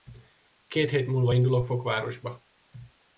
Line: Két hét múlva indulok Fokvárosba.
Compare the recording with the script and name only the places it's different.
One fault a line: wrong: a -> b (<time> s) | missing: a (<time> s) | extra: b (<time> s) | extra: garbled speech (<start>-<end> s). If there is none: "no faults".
no faults